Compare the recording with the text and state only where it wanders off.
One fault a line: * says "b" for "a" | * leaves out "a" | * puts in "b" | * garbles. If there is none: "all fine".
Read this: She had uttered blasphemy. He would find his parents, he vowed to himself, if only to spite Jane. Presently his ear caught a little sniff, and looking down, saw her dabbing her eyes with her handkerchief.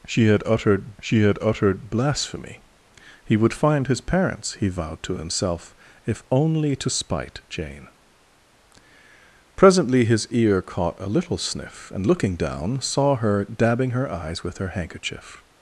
* puts in "she had uttered"